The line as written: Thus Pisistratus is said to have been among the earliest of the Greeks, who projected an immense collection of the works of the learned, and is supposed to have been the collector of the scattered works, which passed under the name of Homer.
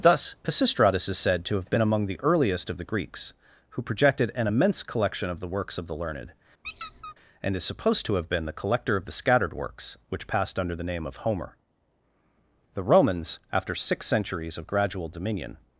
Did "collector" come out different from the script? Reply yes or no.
no